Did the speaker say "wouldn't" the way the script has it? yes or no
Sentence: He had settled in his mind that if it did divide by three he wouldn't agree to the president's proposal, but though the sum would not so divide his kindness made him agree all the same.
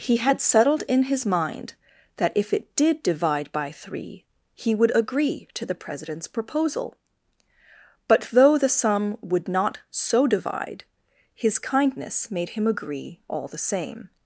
no